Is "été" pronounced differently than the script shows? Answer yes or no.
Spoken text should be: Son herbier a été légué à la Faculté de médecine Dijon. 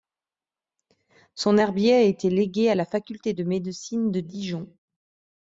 no